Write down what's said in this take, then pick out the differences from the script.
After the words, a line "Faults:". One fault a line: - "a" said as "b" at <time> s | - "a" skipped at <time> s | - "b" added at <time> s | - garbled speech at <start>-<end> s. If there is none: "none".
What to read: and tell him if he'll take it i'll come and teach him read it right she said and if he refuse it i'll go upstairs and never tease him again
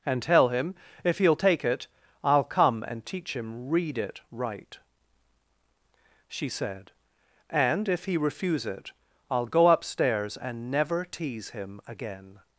and tell him if he'll take it i'll come and teach him read it right she said and if he refuse it i'll go upstairs and never tease him again
Faults:
none